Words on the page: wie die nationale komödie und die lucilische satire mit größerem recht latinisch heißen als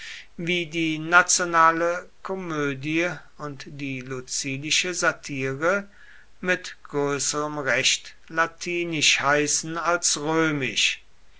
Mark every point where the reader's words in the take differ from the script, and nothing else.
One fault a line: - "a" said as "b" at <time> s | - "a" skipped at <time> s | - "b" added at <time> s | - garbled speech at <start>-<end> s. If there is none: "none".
none